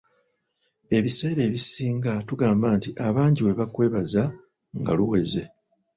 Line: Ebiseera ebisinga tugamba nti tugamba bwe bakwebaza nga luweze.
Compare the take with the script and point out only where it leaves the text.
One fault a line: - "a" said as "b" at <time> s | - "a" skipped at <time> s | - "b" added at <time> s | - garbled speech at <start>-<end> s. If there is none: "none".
- "tugamba" said as "abangi" at 3.1 s